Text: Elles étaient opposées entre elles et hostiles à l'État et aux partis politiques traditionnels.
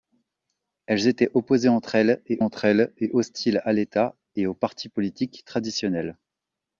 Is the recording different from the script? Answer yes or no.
yes